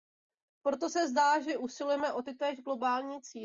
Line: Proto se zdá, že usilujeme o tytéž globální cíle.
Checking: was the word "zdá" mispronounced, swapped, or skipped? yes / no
no